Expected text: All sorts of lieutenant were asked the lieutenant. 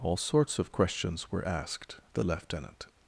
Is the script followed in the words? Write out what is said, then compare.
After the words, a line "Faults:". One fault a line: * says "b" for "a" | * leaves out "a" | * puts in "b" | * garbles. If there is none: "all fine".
All sorts of questions were asked the lieutenant.
Faults:
* says "questions" for "lieutenant"